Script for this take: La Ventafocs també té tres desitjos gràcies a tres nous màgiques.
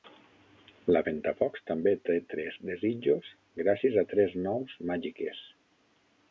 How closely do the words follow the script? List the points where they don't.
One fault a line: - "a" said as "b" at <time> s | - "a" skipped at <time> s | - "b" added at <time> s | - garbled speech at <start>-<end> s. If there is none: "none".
none